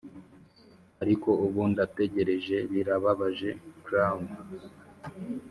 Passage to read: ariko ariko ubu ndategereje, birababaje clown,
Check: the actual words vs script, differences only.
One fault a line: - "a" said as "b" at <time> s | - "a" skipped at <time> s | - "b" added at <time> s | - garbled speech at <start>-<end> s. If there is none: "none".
- "ariko" skipped at 1.3 s